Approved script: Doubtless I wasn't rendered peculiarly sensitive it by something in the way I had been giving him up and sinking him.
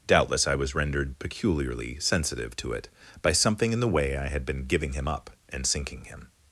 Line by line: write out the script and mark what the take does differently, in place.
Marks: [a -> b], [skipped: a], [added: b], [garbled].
Doubtless I [wasn't -> was] rendered peculiarly sensitive [added: to] it by something in the way I had been giving him up and sinking him.